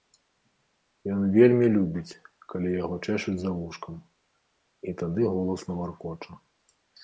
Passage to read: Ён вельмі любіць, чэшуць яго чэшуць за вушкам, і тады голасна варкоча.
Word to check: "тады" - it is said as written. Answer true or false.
true